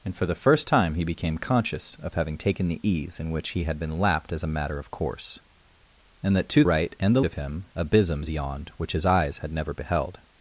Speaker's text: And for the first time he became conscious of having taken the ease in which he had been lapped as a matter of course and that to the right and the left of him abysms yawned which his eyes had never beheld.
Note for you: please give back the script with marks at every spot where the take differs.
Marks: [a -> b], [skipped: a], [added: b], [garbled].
And for the first time he became conscious of having taken the ease in which he had been lapped as a matter of course and that to [skipped: the] right and the [skipped: left] of him abysms yawned which his eyes had never beheld.